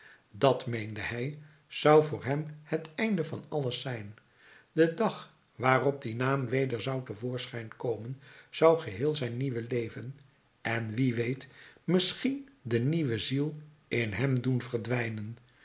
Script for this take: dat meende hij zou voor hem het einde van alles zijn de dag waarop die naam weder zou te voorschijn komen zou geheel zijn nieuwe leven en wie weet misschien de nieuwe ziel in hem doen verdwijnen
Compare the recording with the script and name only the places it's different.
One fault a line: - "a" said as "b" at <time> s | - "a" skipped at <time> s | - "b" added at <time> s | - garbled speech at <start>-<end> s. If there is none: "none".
none